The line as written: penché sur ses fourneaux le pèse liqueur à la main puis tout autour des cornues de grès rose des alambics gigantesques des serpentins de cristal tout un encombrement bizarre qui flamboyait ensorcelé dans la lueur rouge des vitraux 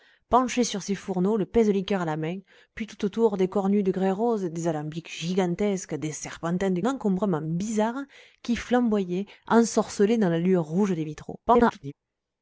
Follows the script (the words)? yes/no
no